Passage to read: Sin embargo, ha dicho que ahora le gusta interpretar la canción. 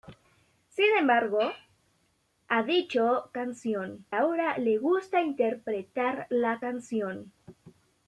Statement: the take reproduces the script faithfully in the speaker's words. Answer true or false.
false